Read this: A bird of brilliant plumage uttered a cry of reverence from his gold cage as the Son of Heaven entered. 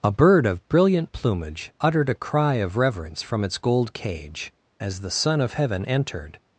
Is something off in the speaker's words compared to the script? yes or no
yes